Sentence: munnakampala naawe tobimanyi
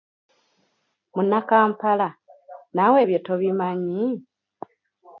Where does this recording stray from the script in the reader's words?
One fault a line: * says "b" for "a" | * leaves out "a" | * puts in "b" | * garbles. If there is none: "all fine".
* puts in "ebyo"